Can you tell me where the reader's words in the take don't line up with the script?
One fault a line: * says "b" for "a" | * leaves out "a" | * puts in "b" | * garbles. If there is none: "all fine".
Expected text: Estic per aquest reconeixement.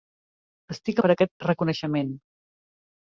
all fine